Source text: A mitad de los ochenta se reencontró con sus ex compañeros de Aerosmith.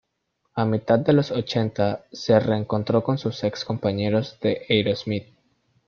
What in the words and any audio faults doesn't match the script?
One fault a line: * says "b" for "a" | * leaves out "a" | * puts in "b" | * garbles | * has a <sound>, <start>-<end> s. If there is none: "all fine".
all fine